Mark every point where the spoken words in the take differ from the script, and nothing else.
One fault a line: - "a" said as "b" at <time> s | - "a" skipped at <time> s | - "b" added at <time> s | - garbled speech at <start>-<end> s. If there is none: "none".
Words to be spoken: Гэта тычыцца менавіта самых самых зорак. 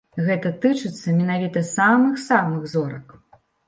none